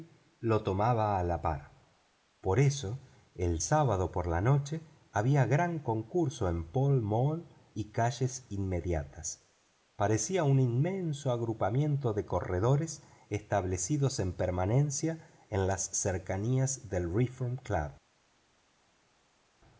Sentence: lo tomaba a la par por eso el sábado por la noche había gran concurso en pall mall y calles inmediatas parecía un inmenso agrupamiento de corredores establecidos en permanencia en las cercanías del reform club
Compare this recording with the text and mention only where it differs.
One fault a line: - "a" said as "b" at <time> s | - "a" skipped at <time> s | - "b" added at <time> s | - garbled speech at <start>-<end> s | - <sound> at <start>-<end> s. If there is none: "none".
none